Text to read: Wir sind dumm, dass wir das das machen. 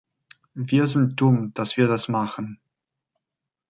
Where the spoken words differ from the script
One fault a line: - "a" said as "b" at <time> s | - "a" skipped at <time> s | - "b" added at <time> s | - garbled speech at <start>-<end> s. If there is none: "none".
- "das" skipped at 2.1 s